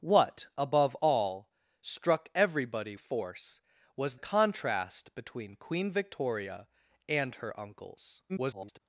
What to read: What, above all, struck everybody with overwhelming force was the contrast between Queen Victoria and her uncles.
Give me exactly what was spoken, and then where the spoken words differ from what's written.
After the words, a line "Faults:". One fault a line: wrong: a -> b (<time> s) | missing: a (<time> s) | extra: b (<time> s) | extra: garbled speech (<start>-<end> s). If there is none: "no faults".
What, above all, struck everybody force was contrast between Queen Victoria and her uncles. [garbled]
Faults:
missing: with overwhelming (2.9 s)
missing: the (4.2 s)
extra: garbled speech (8.3-8.8 s)